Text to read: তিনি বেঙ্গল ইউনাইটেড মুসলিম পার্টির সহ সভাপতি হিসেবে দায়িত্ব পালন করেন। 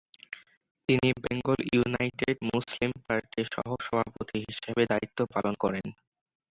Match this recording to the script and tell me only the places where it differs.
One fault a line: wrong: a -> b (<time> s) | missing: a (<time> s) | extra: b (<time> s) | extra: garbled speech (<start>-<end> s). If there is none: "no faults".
no faults